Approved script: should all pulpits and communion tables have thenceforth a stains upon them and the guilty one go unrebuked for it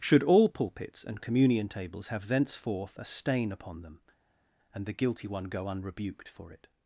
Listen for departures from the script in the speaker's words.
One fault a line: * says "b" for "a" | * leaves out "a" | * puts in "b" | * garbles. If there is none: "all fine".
* says "stain" for "stains"